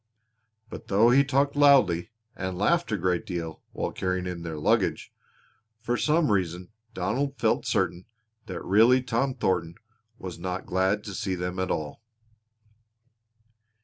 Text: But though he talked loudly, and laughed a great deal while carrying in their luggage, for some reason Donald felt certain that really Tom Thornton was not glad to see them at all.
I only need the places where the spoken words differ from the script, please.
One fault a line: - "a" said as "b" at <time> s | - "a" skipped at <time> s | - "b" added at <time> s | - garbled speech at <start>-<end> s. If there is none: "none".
none